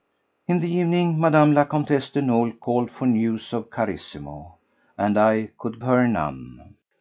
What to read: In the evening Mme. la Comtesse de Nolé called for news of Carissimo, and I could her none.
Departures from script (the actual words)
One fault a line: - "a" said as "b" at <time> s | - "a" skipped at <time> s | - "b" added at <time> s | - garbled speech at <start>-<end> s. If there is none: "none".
none